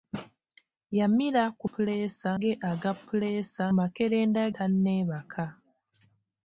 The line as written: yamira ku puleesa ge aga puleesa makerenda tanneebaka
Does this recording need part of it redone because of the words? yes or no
no